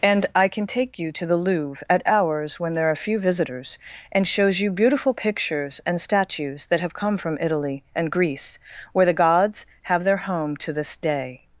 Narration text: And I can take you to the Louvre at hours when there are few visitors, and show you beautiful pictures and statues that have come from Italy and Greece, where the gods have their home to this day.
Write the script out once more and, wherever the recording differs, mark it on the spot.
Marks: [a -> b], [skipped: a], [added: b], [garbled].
And I can take you to the Louvre at hours when there are few visitors, and [show -> shows] you beautiful pictures and statues that have come from Italy and Greece, where the gods have their home to this day.